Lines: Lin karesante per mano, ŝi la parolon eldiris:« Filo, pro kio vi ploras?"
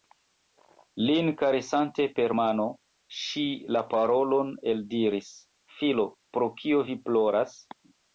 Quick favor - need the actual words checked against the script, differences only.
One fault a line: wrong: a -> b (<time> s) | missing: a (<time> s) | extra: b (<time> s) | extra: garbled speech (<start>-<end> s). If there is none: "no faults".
no faults